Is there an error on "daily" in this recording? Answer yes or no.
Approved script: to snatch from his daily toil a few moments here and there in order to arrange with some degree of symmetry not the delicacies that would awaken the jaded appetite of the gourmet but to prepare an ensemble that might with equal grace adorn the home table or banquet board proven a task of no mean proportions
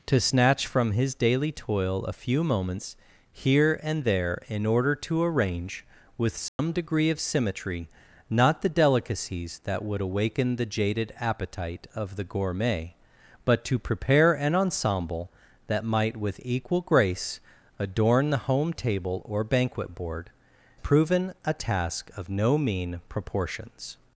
no